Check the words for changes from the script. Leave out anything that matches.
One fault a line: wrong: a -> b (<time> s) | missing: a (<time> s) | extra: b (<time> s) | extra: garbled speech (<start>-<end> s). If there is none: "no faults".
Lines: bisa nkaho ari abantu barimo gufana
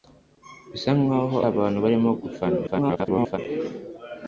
missing: ari (1.4 s)
extra: garbled speech (2.7-3.4 s)